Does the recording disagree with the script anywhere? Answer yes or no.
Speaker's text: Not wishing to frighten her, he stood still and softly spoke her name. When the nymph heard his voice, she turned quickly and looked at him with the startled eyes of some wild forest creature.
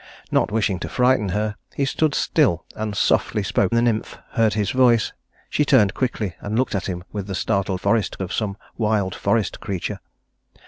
yes